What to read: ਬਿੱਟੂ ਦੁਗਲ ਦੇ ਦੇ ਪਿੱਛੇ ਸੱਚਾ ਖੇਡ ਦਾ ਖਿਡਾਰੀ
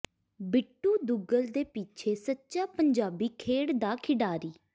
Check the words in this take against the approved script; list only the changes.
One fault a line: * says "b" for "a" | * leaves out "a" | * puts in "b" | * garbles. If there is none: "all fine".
* leaves out "ਦੇ"
* puts in "ਪੰਜਾਬੀ"